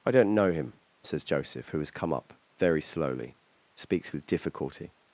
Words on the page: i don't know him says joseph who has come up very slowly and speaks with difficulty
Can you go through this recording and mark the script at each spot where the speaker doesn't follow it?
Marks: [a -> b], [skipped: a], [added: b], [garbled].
i don't know him says joseph who has come up very slowly [skipped: and] speaks with difficulty